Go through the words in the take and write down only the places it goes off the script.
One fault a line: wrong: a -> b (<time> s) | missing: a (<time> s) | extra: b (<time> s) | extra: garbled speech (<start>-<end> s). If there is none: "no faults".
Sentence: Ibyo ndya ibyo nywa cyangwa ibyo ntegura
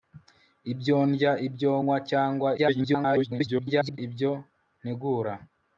extra: garbled speech (2.6-4.0 s)